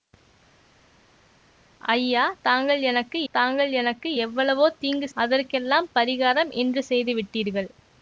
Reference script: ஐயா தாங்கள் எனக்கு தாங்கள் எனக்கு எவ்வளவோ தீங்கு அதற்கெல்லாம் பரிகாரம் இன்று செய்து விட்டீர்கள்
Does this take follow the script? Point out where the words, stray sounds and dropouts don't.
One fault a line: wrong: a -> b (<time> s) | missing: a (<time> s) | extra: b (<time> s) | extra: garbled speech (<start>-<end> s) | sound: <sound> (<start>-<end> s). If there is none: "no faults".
no faults